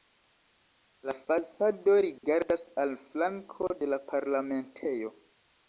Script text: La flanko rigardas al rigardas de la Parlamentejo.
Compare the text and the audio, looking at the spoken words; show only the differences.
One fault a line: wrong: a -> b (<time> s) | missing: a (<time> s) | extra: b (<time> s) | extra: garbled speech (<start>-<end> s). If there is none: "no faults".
wrong: flanko -> fasado (1.3 s)
wrong: rigardas -> flanko (3.1 s)